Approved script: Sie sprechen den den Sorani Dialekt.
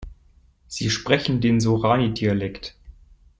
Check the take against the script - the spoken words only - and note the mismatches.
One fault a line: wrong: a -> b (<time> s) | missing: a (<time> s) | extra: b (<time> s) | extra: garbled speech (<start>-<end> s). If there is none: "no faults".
missing: den (1.6 s)